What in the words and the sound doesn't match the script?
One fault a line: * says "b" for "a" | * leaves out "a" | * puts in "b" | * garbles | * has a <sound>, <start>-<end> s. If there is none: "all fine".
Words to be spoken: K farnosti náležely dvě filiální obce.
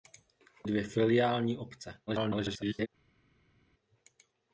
* leaves out "farnosti náležely"
* garbles